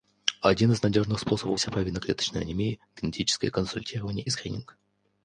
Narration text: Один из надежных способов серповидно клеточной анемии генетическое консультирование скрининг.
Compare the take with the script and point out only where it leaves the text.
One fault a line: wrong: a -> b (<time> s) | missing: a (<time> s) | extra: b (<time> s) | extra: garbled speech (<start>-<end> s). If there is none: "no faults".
no faults